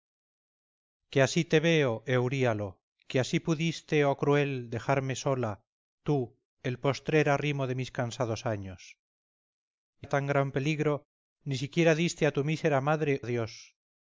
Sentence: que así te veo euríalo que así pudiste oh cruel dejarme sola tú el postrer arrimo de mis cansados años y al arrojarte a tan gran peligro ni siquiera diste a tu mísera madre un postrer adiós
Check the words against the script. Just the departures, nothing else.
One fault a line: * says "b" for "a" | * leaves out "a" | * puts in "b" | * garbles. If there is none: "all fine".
* leaves out "al arrojarte"
* leaves out "un postrer"